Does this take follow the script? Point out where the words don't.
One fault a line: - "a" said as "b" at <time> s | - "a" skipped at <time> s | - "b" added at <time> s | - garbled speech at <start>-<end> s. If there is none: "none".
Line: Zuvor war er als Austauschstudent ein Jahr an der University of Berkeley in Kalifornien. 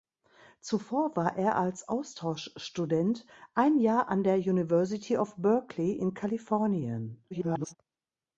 - garbled speech at 7.3-7.8 s